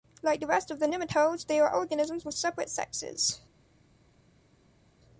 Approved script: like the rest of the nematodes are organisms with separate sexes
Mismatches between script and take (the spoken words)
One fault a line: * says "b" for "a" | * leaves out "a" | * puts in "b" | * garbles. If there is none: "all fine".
* puts in "they"